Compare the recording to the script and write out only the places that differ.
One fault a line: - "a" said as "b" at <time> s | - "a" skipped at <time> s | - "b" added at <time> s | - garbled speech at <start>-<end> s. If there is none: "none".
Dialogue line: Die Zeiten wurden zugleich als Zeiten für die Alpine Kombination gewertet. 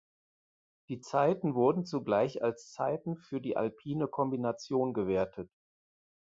none